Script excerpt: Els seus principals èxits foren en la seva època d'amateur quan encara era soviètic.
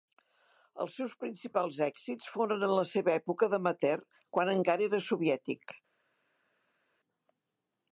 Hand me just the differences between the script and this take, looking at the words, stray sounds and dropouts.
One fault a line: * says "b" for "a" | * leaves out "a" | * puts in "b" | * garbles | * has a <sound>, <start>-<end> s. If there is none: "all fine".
all fine